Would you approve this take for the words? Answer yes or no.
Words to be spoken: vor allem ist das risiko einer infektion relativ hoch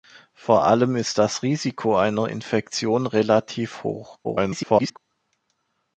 no